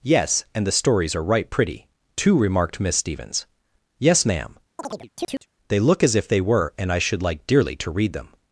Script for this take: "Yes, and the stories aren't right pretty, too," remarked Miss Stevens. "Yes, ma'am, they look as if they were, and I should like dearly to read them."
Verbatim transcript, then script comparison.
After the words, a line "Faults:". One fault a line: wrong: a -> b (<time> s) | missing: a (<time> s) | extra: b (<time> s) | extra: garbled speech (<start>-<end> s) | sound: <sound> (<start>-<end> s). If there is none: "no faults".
"Yes, and the stories are right pretty, too," remarked Miss Stevens. "Yes, ma'am, they look as if they were, and I should like dearly to read them."
Faults:
wrong: aren't -> are (1.1 s)
sound: chirp (4.8-5.5 s)